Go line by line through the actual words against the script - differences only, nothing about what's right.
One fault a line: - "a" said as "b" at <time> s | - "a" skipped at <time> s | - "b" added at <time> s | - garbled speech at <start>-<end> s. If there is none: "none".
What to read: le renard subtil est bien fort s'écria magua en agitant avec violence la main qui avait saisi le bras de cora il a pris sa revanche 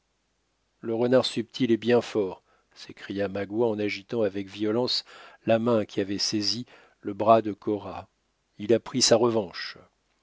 none